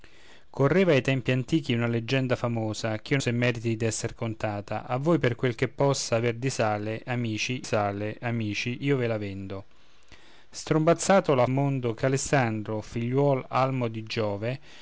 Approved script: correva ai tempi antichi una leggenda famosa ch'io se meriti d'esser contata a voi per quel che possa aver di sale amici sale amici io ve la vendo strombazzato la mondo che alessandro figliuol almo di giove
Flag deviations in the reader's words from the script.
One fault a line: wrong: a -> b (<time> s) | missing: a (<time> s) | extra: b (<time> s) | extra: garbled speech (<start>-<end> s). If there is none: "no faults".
no faults